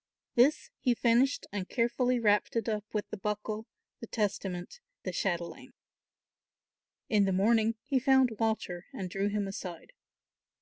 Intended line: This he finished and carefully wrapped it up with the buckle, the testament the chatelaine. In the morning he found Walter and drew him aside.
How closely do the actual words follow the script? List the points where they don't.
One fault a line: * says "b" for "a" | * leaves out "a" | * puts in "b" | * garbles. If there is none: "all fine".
all fine